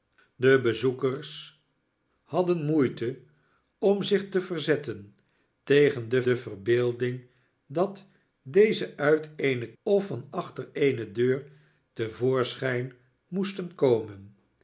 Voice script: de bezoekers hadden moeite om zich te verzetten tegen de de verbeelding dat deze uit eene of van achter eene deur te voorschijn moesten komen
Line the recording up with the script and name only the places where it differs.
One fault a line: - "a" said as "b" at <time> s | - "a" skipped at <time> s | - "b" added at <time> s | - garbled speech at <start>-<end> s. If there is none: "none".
none